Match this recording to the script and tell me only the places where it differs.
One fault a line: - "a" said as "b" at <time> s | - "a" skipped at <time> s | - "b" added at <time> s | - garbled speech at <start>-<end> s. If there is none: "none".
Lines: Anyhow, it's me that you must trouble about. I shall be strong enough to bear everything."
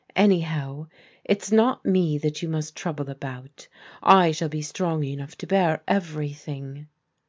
- "not" added at 1.5 s